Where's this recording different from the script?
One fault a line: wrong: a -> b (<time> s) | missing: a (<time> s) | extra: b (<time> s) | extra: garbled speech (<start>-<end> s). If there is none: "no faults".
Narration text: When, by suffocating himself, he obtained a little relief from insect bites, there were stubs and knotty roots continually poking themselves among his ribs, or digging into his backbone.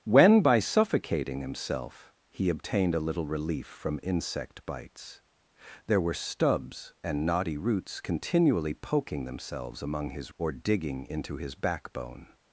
missing: ribs (10.3 s)